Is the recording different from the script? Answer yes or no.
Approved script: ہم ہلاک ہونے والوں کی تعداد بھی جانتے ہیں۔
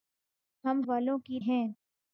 yes